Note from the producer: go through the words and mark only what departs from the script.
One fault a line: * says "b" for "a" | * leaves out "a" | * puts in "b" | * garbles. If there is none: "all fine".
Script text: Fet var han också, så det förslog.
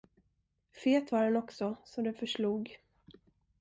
all fine